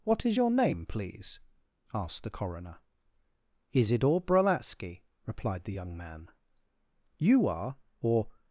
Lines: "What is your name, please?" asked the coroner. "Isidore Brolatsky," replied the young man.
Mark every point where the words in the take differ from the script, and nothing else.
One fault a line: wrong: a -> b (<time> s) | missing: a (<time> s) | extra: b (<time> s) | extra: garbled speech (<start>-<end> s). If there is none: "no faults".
extra: You are or (7.2 s)